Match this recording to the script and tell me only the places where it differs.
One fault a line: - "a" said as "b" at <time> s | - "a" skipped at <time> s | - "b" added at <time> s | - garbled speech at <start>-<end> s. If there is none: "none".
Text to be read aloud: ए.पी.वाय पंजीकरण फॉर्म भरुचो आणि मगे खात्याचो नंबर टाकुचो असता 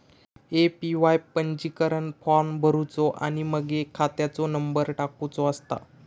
none